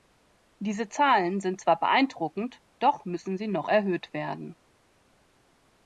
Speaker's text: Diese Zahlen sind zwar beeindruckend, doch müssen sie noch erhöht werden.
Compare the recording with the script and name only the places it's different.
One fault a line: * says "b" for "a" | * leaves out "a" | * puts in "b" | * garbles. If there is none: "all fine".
all fine